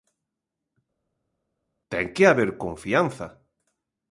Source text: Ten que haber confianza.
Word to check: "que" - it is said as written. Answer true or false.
true